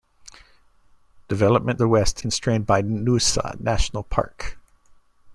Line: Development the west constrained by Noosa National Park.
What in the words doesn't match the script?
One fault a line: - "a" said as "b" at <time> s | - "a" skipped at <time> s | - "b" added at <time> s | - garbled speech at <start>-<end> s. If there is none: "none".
none